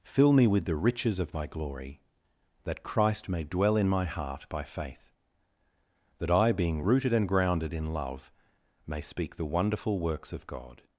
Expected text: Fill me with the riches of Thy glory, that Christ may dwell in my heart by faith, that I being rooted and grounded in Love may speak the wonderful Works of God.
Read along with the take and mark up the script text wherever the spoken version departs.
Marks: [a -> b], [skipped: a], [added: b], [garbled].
Fill me with the riches of Thy glory, that Christ may dwell in my heart by faith, that I being rooted and grounded in Love may speak the wonderful Works of God.